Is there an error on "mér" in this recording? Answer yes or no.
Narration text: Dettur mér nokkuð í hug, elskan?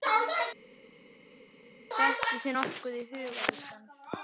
yes